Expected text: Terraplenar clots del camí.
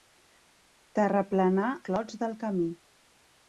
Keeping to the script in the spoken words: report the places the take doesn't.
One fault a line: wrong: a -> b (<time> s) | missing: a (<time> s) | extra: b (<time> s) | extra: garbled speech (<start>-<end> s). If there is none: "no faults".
no faults